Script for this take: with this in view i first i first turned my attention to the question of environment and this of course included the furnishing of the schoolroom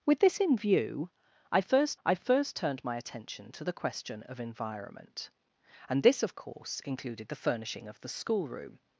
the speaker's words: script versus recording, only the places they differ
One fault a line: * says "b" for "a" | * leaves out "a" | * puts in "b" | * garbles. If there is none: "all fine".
all fine